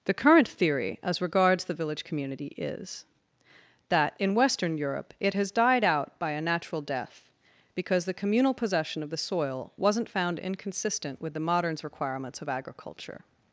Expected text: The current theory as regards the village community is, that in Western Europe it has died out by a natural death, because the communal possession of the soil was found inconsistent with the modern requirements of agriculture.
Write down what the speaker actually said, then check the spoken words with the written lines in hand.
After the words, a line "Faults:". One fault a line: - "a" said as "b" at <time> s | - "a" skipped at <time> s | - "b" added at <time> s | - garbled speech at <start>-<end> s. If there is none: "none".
The current theory as regards the village community is, that in Western Europe it has died out by a natural death, because the communal possession of the soil wasn't found inconsistent with the moderns requirements of agriculture.
Faults:
- "was" said as "wasn't" at 9.8 s
- "modern" said as "moderns" at 11.4 s